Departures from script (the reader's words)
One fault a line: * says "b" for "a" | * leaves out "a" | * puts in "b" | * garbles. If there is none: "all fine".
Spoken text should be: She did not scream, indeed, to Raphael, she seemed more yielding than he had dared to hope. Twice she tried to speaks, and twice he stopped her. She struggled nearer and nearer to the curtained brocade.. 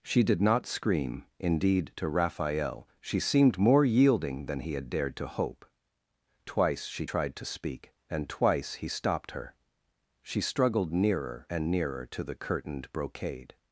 * says "speak" for "speaks"